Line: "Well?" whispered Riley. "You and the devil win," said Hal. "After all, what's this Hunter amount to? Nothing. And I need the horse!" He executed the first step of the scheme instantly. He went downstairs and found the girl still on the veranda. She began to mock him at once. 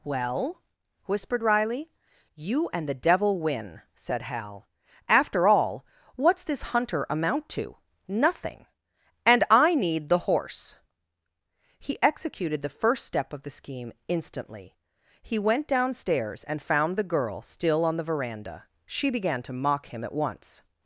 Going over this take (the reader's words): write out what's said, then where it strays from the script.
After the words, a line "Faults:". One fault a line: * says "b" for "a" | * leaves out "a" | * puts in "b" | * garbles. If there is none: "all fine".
"Well?" whispered Riley. "You and the devil win," said Hal. "After all, what's this Hunter amount to? Nothing. And I need the horse!" He executed the first step of the scheme instantly. He went downstairs and found the girl still on the veranda. She began to mock him at once.
Faults:
all fine